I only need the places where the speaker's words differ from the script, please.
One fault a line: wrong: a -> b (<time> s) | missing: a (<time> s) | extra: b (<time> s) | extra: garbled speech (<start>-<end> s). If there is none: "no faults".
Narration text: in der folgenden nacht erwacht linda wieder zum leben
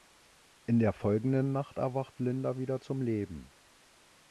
no faults